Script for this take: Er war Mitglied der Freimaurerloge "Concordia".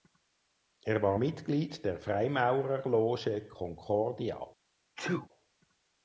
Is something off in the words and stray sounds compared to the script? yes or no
yes